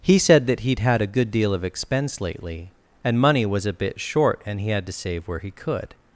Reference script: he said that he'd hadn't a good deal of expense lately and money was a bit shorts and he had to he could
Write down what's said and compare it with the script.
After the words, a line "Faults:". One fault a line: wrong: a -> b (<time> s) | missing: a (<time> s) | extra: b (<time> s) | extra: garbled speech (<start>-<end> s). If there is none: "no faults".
he said that he'd had a good deal of expense lately and money was a bit short and he had to save where he could
Faults:
wrong: hadn't -> had (0.8 s)
wrong: shorts -> short (4.0 s)
extra: save where (4.9 s)